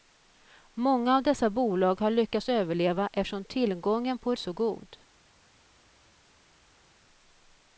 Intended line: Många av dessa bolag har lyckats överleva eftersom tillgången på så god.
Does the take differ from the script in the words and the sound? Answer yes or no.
no